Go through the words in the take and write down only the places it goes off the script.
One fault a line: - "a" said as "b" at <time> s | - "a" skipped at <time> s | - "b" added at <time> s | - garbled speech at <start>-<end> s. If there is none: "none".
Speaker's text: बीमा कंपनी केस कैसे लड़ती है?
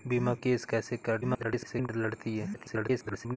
- "कंपनी" skipped at 0.3 s
- garbled speech at 1.2-1.9 s
- garbled speech at 2.5-3.4 s